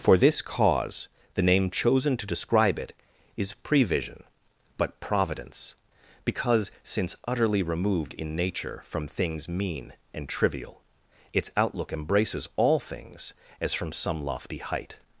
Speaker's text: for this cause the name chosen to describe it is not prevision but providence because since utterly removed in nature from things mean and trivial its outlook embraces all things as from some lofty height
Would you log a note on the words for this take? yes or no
yes